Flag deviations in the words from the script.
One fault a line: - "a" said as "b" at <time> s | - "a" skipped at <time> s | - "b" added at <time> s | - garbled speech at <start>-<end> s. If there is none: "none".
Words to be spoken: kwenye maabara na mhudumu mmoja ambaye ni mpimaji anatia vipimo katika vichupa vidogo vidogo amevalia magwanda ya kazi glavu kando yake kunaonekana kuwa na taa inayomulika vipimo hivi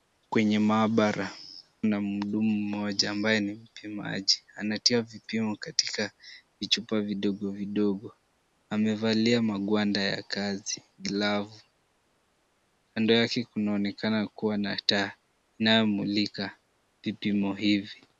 none